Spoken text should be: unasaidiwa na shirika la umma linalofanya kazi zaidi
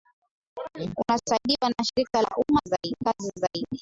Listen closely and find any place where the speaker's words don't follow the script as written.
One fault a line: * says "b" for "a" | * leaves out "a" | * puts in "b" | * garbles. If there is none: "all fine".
* says "zaidi" for "linalofanya"